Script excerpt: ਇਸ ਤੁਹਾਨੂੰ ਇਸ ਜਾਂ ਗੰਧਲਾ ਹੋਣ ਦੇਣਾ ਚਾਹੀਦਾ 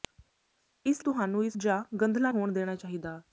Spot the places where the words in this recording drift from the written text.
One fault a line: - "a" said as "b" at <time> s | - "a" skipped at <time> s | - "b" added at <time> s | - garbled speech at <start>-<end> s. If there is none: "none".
none